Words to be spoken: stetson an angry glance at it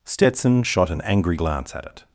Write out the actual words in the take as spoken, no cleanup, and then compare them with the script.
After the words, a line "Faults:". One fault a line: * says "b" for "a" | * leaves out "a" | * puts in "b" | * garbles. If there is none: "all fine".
stetson shot an angry glance at it
Faults:
* puts in "shot"